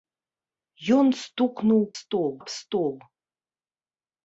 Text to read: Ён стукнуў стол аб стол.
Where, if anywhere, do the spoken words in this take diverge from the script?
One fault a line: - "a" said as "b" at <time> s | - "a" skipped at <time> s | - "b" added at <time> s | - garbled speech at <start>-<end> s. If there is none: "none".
none